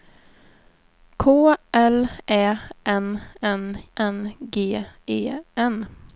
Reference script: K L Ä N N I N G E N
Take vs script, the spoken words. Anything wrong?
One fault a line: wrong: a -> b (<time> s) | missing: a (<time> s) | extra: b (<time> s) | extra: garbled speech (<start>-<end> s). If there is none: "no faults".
missing: I (3.8 s)